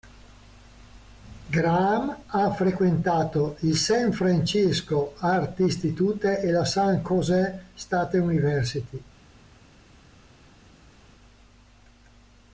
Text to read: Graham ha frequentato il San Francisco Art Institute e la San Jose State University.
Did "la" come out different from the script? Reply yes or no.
no